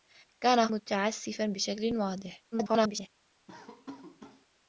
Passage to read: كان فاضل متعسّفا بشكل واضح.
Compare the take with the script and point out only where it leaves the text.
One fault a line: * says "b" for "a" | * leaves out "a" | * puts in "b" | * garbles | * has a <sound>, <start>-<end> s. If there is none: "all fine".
* leaves out "فاضل"
* garbles
* has a laugh, 3.5-4.5 s